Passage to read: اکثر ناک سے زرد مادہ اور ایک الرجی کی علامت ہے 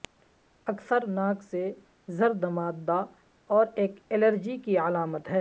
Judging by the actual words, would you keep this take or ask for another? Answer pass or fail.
pass